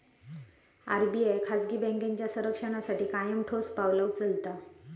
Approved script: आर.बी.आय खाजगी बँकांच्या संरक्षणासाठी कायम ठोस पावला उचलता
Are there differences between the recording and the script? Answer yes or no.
no